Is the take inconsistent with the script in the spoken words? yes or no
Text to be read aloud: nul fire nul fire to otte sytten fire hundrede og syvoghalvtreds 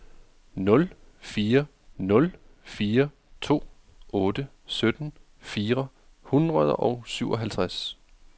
no